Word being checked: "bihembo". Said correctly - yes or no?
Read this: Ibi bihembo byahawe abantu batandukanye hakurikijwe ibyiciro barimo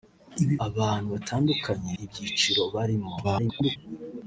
no